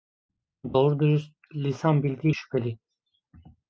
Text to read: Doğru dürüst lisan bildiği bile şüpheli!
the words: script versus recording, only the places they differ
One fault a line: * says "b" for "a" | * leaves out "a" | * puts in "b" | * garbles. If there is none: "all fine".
* leaves out "bile"